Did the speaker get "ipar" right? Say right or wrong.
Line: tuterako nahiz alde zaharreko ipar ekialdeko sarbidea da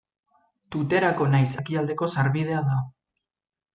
wrong